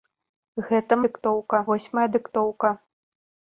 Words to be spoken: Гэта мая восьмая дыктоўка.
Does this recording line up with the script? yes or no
no